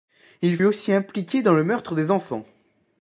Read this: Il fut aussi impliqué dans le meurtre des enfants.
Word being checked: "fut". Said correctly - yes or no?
no